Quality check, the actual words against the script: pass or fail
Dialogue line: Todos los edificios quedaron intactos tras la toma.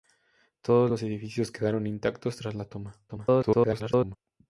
fail